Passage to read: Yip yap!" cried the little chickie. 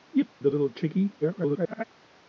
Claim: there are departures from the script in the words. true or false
true